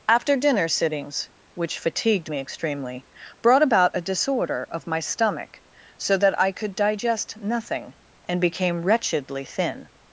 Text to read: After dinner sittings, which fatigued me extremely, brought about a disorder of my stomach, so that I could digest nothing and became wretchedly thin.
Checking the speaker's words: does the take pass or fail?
pass